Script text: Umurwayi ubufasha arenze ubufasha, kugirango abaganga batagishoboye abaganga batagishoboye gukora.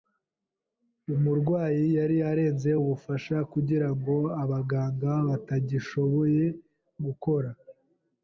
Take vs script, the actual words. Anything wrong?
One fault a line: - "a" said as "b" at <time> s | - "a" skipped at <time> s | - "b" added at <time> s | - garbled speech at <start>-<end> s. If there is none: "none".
- "ubufasha" said as "yari" at 2.0 s
- "abaganga batagishoboye" skipped at 6.4 s